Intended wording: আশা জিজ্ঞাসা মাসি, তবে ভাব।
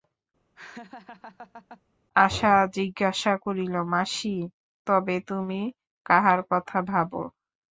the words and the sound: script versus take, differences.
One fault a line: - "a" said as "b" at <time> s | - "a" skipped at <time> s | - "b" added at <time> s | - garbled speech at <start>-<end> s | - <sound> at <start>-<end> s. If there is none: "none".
- laugh at 0.6-1.8 s
- "করিল" added at 3.4 s
- "তুমি কাহার কথা" added at 5.3 s